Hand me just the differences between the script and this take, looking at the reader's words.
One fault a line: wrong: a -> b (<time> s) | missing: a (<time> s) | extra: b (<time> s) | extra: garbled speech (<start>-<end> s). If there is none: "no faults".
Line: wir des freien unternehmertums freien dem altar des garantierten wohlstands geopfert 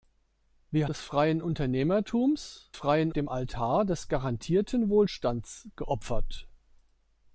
no faults